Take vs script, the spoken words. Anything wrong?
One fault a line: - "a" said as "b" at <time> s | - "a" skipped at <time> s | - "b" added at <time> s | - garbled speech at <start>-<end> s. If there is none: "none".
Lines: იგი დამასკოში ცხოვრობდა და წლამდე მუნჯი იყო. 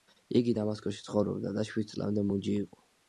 - "შვიდ" added at 1.7 s